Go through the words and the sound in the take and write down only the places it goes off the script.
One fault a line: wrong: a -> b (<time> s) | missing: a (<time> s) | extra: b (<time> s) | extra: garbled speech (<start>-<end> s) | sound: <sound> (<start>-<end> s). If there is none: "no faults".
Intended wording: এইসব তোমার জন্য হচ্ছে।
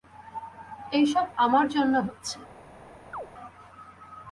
wrong: তোমার -> আমার (1.4 s)
sound: chirp (3.1-3.3 s)